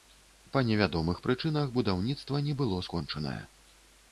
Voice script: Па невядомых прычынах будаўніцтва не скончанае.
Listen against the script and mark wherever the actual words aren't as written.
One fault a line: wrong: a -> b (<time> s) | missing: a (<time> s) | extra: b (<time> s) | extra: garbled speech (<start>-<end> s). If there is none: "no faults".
extra: было (2.6 s)